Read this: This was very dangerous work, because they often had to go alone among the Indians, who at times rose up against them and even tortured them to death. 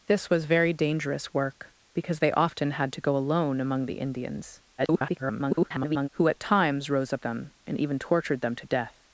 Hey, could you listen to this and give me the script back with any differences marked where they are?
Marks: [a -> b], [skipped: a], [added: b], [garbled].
This was very dangerous work, because they often had to go alone among the Indians, [garbled] who at times rose up [skipped: against] them and even tortured them to death.